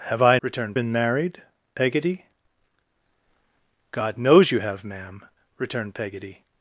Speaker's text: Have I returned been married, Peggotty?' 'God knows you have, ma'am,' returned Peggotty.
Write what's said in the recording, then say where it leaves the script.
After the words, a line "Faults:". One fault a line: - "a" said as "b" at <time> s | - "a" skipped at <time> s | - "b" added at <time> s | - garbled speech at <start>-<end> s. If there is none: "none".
Have I returned been married, Peggotty?' 'God knows you have, ma'am,' returned Peggotty.
Faults:
none